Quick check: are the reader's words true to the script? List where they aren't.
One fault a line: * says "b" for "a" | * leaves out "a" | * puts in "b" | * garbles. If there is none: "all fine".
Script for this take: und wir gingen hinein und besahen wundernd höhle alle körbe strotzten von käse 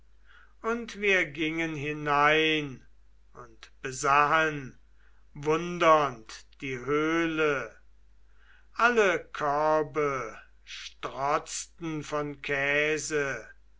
* puts in "die"